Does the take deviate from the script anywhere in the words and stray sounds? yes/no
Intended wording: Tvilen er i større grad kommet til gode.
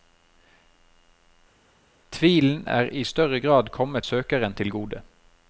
yes